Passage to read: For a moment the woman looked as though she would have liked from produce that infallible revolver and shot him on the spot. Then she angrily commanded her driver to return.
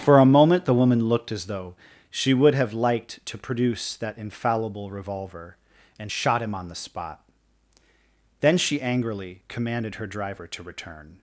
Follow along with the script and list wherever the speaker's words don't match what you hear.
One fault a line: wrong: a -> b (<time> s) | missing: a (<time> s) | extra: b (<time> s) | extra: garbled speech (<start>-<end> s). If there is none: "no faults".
wrong: from -> to (3.3 s)